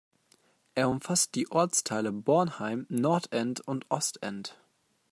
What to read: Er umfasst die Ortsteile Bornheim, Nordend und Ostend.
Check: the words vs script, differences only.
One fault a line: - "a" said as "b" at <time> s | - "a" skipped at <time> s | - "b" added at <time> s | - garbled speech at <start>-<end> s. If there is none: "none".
none